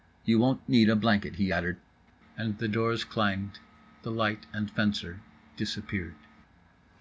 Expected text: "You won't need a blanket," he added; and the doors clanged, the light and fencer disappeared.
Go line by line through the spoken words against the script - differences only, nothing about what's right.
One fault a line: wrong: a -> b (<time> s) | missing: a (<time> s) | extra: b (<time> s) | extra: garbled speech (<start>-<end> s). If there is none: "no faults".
no faults